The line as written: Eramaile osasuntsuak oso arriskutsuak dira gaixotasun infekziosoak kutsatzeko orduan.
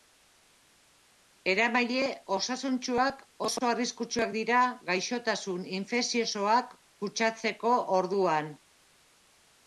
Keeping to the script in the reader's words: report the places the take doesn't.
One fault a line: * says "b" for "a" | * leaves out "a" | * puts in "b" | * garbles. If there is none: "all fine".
all fine